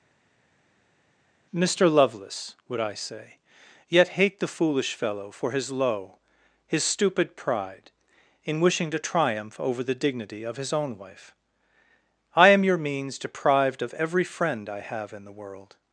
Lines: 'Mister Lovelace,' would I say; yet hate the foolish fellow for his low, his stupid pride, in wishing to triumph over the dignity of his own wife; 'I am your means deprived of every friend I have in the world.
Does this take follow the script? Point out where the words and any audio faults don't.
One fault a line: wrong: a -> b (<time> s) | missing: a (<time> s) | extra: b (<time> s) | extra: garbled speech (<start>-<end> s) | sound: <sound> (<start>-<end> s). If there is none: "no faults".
no faults